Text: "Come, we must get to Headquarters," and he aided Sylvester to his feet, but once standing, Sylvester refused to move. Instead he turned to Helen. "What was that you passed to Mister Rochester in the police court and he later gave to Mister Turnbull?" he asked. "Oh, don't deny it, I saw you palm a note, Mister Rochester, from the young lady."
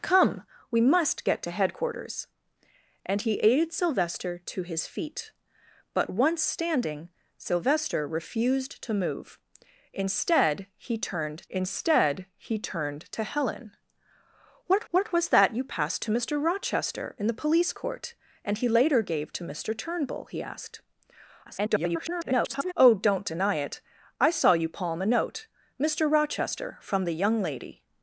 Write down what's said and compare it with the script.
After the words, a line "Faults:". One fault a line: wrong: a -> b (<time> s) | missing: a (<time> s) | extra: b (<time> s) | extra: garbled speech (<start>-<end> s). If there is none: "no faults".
"Come, we must get to Headquarters," and he aided Sylvester to his feet, but once standing, Sylvester refused to move. Instead he turned instead he turned to Helen. "What what was that you passed to Mister Rochester in the police court and he later gave to Mister Turnbull?" he asked. [garbled] "Oh, don't deny it, I saw you palm a note, Mister Rochester, from the young lady."
Faults:
extra: instead he turned (11.5 s)
extra: what (14.9 s)
extra: garbled speech (21.5-22.7 s)